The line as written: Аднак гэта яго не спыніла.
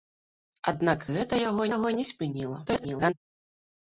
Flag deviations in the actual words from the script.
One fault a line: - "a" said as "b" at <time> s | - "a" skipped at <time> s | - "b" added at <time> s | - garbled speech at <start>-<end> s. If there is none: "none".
- "яго" added at 1.7 s
- garbled speech at 2.7-3.1 s